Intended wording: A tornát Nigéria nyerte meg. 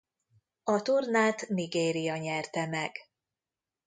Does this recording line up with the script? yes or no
yes